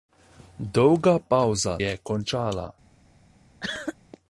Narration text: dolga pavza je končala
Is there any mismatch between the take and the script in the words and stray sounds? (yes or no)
yes